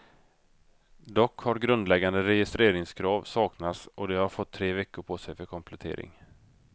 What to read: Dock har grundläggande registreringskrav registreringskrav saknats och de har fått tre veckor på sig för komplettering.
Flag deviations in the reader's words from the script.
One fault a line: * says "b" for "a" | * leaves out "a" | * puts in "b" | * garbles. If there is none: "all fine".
* leaves out "registreringskrav"